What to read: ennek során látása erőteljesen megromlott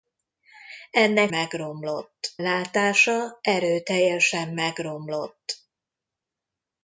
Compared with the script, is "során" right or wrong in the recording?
wrong